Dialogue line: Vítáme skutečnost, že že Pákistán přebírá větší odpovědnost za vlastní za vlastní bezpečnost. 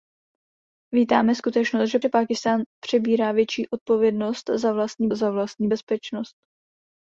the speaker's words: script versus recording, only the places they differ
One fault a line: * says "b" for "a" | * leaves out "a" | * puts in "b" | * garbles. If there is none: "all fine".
all fine